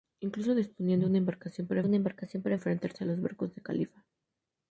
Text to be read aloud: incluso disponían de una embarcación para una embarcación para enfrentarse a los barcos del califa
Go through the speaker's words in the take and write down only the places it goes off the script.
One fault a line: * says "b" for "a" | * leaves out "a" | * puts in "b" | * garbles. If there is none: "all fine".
all fine